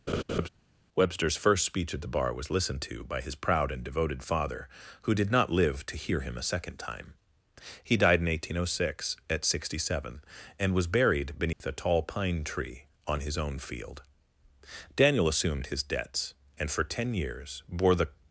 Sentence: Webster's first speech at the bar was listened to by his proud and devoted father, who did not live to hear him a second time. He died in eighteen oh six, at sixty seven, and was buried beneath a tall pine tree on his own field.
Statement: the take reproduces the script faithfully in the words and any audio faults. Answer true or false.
false